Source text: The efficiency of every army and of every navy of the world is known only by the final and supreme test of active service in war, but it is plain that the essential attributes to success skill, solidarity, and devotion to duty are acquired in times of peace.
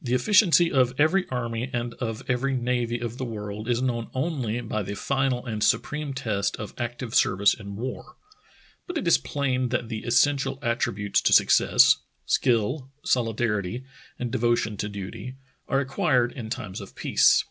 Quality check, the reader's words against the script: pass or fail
pass